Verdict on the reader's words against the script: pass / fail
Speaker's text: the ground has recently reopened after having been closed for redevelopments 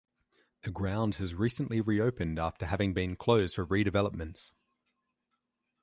pass